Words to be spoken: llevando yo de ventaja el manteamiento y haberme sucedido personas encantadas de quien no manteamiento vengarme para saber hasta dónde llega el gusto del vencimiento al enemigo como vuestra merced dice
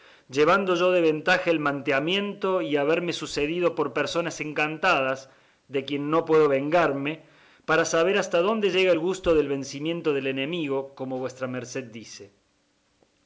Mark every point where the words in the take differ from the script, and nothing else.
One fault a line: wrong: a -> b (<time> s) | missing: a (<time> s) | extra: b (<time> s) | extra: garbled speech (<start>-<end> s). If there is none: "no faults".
extra: por (3.8 s)
wrong: manteamiento -> puedo (6.2 s)
wrong: al -> del (10.1 s)